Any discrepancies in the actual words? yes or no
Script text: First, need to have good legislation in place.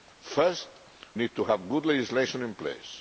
no